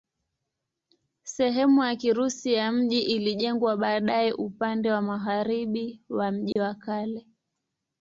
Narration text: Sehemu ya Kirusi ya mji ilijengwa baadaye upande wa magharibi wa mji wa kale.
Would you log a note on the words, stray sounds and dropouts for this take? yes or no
yes